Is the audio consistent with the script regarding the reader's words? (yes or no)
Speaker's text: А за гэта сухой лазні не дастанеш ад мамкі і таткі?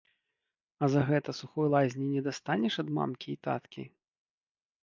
yes